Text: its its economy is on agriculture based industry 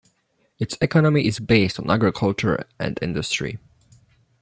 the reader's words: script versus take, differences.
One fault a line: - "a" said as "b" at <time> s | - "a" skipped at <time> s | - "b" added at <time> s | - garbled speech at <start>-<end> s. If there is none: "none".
- "its" skipped at 0.8 s
- "based" added at 1.4 s
- "based" said as "and" at 2.8 s